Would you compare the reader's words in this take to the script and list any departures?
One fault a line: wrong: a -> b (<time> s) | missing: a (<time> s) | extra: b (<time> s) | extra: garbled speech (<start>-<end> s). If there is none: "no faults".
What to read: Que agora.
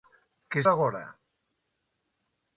no faults